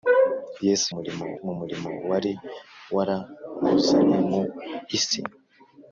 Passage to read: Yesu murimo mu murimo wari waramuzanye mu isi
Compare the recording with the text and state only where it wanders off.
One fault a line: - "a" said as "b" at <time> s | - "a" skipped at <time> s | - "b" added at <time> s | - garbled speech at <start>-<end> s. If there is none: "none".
none